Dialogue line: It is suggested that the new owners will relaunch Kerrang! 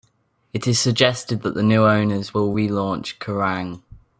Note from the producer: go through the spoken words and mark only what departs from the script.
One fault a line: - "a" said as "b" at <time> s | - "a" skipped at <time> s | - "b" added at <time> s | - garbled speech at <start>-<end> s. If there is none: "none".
none